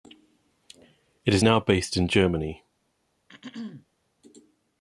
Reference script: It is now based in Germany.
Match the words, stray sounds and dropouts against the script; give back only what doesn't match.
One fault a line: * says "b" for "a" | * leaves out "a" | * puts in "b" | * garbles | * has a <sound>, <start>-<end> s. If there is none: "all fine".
* has a throat clearing, 3.3-3.9 s